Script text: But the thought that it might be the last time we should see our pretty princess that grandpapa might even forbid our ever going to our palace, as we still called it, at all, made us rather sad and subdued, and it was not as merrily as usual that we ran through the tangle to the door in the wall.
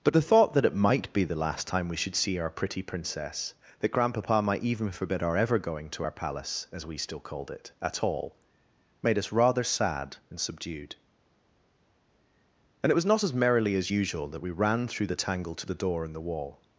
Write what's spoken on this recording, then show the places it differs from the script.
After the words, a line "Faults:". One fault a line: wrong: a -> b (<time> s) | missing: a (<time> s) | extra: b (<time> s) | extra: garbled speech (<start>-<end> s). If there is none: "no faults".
But the thought that it might be the last time we should see our pretty princess that grandpapa might even forbid our ever going to our palace, as we still called it, at all, made us rather sad and subdued, and it was not as merrily as usual that we ran through the tangle to the door in the wall.
Faults:
no faults